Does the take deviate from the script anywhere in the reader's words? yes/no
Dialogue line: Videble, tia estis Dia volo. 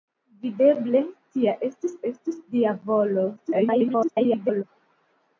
yes